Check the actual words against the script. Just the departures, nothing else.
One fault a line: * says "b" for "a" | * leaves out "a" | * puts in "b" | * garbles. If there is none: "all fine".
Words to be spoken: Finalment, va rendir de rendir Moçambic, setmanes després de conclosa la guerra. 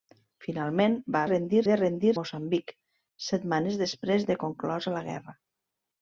all fine